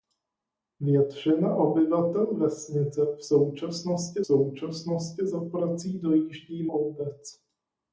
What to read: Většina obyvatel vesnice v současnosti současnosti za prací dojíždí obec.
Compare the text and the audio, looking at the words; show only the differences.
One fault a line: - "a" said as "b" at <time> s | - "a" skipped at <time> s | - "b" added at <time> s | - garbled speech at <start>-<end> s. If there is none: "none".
none